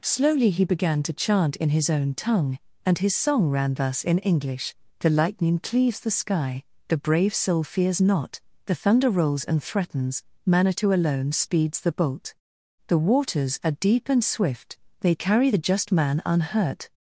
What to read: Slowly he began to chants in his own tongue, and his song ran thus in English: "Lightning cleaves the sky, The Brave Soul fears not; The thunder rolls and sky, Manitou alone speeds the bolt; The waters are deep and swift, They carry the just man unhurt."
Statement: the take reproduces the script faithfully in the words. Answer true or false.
false